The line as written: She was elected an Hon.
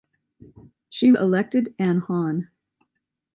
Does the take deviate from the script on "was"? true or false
true